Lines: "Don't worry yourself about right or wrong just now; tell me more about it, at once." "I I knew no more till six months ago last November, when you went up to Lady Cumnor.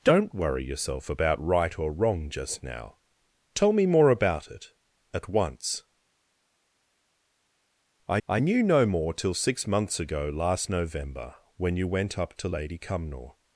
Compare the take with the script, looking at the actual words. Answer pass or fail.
pass